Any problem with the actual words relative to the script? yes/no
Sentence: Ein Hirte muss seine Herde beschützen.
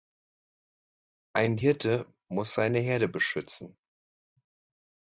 no